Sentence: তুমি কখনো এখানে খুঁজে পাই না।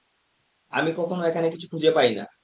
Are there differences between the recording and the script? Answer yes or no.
yes